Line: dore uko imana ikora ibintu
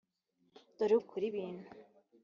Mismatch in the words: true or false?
true